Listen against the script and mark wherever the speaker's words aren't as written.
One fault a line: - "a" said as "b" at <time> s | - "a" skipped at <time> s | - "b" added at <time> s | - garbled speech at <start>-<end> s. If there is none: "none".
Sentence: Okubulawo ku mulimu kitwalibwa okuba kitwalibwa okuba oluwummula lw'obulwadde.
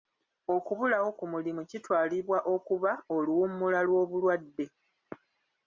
- "kitwalibwa okuba" skipped at 2.9 s